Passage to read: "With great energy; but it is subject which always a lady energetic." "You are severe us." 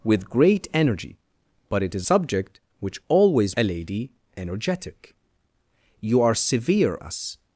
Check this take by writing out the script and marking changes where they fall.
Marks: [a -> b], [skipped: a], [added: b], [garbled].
"With great energy; but it is subject which always a lady energetic." "You are severe us."